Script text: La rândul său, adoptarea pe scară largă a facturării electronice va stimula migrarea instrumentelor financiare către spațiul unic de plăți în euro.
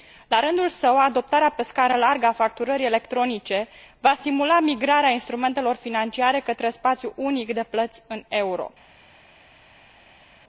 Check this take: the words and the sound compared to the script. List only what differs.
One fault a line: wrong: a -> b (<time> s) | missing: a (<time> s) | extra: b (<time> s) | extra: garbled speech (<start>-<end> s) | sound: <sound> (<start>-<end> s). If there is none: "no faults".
no faults